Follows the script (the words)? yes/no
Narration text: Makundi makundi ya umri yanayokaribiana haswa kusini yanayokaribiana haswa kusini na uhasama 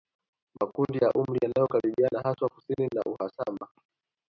no